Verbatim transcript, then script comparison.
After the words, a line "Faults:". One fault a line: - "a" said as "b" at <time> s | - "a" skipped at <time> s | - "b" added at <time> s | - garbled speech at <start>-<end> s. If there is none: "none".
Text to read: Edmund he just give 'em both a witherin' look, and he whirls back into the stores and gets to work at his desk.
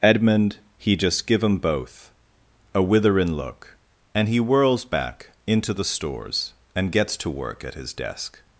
Edmund he just give 'em both a witherin' look, and he whirls back into the stores and gets to work at his desk.
Faults:
none